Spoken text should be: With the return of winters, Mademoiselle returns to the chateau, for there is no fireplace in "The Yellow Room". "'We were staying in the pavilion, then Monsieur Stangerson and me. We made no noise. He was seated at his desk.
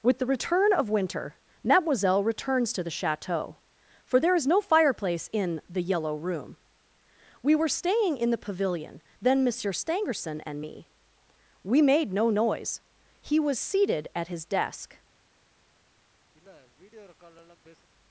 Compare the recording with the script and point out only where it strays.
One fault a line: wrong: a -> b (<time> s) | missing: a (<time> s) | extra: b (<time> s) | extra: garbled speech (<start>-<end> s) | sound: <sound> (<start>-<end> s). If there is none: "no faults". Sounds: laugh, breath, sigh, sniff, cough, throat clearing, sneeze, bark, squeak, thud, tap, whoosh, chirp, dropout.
wrong: winters -> winter (0.9 s)
sound: sniff (16.3-17.9 s)